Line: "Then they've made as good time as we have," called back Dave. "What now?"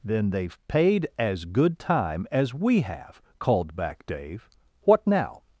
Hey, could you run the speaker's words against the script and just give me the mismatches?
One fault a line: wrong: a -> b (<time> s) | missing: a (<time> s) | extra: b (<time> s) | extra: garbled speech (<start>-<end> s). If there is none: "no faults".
wrong: made -> paid (0.7 s)